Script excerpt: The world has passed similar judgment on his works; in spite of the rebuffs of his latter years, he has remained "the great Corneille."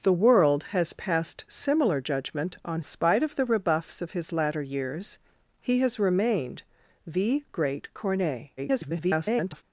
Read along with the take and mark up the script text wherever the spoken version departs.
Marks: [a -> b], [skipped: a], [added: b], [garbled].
The world has passed similar judgment on [skipped: his works; in] spite of the rebuffs of his latter years, he has remained "the great Corneille." [garbled]